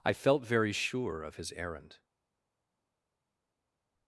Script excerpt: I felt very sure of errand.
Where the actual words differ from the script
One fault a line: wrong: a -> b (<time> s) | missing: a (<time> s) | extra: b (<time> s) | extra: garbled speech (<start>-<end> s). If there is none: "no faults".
extra: his (1.4 s)